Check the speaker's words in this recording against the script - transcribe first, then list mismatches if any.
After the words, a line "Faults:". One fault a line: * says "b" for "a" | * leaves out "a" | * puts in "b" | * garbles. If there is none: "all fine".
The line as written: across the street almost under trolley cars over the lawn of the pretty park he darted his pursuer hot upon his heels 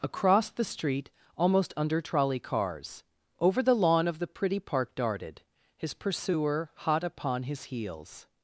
across the street almost under trolley cars over the lawn of the pretty park darted his pursuer hot upon his heels
Faults:
* leaves out "he"